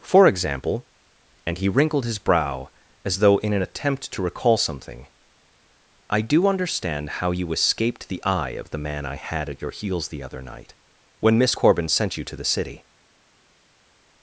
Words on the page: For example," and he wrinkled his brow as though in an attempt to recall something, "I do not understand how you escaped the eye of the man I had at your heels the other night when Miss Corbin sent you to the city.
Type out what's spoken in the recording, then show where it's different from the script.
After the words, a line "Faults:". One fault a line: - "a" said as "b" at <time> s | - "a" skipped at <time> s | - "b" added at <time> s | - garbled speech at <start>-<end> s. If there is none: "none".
For example," and he wrinkled his brow as though in an attempt to recall something, "I do understand how you escaped the eye of the man I had at your heels the other night when Miss Corbin sent you to the city.
Faults:
- "not" skipped at 6.5 s